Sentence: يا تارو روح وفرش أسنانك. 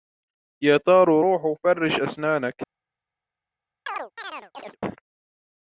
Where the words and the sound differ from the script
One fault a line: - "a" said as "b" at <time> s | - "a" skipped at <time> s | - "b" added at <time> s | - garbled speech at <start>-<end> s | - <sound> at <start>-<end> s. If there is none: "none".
- chirp at 3.9-4.8 s